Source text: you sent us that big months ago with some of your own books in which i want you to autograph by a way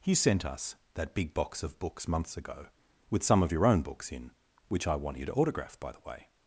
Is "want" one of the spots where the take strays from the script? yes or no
no